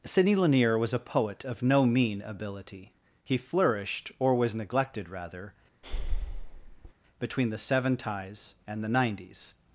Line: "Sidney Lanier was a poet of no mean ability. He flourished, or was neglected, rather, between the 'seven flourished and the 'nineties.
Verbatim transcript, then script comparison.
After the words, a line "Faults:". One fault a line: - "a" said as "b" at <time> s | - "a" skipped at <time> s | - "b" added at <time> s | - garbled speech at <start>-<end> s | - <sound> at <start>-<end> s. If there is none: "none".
"Sidney Lanier was a poet of no mean ability. He flourished, or was neglected, rather, between the 'seven ties and the 'nineties.
Faults:
- breath at 5.8-6.9 s
- "flourished" said as "ties" at 8.0 s